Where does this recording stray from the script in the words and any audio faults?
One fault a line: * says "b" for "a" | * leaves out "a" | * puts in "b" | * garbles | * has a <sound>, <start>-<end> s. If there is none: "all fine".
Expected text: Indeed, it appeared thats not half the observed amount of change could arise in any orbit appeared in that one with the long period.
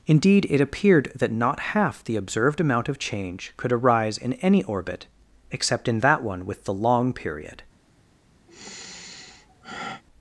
* says "that" for "thats"
* says "except" for "appeared"
* has a sigh, 8.5-10.0 s